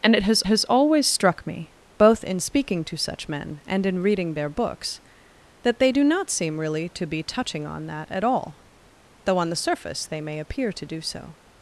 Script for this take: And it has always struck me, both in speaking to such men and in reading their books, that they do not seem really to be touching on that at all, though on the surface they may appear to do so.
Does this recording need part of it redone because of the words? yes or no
yes